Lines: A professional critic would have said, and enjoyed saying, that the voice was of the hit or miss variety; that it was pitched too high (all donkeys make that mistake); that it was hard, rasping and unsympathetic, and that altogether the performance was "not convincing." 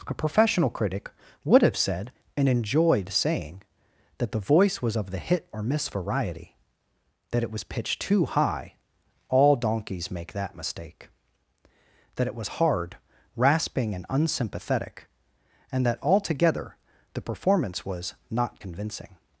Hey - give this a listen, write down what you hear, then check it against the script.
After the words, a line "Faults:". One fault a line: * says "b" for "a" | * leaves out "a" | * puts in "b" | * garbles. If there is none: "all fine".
A professional critic would have said, and enjoyed saying, that the voice was of the hit or miss variety; that it was pitched too high (all donkeys make that mistake); that it was hard, rasping and unsympathetic, and that altogether the performance was "not convincing."
Faults:
all fine